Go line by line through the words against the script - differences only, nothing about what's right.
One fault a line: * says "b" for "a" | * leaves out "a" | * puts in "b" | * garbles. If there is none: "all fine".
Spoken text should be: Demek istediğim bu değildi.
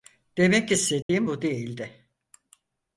all fine